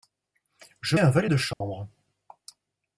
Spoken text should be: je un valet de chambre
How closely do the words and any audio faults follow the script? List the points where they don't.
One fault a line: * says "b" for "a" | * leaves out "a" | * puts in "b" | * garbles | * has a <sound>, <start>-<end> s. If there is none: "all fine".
* has a dropout, 1.5-1.6 s